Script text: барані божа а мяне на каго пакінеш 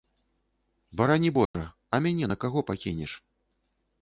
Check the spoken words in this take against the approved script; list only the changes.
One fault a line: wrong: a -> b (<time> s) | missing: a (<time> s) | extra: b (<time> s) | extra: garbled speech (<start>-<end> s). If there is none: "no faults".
no faults